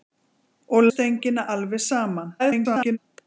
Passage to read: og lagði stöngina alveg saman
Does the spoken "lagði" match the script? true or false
false